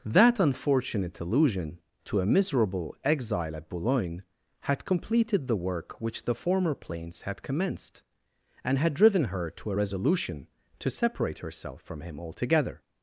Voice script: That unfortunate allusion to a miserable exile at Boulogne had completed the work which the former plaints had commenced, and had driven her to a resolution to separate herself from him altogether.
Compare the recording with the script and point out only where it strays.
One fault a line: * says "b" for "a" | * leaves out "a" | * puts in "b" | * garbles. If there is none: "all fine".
all fine